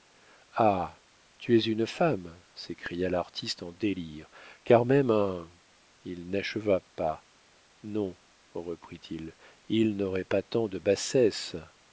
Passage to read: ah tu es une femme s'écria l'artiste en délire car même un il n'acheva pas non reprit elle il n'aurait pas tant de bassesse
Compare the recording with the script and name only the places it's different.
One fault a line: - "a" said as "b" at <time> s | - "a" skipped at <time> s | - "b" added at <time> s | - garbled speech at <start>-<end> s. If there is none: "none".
- "elle" said as "il" at 9.1 s